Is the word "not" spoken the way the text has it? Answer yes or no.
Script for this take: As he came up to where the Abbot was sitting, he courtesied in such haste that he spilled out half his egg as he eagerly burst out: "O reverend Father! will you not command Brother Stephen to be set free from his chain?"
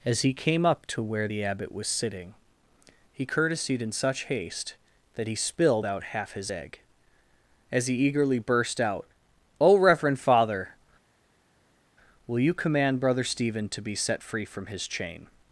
no